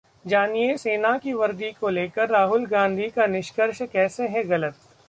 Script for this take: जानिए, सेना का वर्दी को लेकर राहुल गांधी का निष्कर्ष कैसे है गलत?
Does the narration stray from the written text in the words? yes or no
yes